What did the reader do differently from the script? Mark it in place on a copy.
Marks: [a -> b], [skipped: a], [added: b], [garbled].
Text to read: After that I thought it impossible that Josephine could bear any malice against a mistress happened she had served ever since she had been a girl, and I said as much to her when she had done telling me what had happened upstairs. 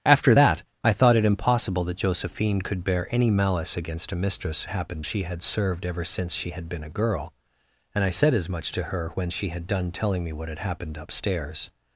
After that I thought it impossible that Josephine could bear any malice against a mistress happened she had served ever since she had been a girl, and I said as much to her when she had done telling me what had happened upstairs.